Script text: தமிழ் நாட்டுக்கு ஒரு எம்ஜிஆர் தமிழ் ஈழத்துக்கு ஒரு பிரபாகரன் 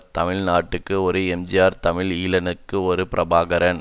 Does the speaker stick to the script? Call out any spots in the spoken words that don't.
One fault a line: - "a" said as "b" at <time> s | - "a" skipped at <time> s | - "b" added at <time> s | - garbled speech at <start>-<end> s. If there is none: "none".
none